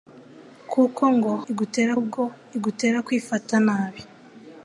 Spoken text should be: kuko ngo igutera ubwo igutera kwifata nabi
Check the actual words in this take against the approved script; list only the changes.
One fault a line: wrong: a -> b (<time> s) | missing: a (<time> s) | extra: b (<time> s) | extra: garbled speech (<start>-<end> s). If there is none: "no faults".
no faults